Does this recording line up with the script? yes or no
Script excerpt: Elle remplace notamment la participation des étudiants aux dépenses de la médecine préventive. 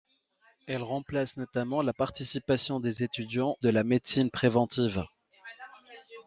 no